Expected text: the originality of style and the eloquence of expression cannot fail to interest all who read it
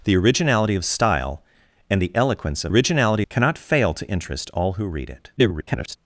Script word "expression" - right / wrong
wrong